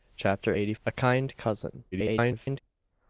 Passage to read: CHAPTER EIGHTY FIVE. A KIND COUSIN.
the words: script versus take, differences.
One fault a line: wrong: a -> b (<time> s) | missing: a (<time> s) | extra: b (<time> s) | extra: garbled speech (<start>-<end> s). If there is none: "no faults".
missing: FIVE (0.7 s)
extra: garbled speech (1.9-2.6 s)